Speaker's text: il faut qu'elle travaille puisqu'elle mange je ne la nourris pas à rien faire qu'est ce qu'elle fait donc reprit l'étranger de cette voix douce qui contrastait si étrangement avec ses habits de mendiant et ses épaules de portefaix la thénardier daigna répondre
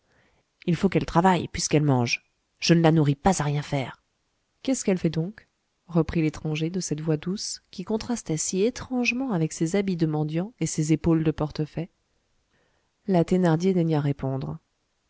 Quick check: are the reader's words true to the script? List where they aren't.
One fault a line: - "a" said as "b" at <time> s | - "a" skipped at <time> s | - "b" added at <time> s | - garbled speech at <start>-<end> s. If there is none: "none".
none